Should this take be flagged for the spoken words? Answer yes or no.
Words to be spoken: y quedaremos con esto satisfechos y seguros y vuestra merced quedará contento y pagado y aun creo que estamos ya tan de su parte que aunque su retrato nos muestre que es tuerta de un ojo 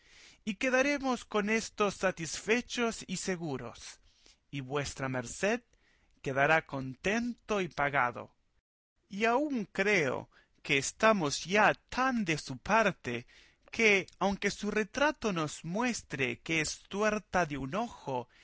no